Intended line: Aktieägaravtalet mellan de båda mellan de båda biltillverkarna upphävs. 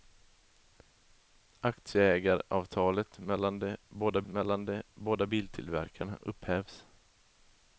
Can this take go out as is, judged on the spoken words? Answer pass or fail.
pass